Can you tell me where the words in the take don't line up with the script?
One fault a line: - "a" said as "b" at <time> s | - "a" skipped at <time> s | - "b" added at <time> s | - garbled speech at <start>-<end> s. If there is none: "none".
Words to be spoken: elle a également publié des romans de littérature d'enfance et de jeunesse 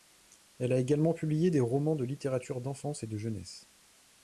none